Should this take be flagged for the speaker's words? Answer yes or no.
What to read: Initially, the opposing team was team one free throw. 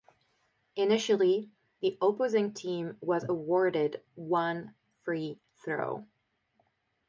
yes